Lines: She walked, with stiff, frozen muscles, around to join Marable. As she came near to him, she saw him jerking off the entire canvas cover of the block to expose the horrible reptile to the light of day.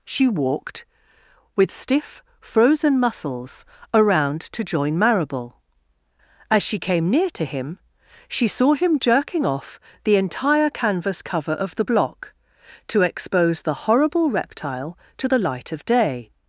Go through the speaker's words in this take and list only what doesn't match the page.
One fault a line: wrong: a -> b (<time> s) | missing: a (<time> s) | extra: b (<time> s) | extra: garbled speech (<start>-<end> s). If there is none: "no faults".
no faults